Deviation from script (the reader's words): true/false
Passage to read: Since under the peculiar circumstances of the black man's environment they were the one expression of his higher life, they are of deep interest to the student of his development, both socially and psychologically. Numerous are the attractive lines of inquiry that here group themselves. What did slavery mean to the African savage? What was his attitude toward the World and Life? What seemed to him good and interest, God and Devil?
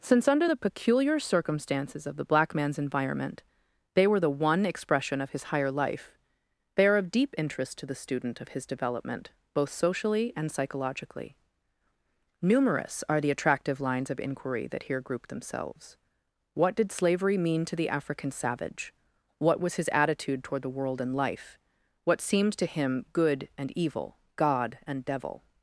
true